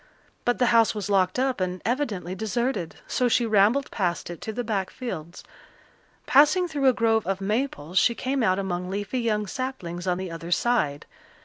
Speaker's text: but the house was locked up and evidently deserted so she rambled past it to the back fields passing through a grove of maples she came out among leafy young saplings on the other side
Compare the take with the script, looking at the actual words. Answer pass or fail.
pass